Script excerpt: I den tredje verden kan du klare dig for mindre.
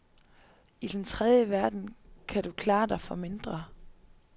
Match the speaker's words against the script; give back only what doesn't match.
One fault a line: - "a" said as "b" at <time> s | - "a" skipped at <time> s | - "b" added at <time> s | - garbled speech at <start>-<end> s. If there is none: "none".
none